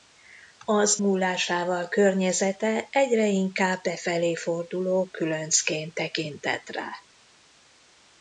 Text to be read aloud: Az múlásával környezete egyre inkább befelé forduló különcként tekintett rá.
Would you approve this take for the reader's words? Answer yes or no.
yes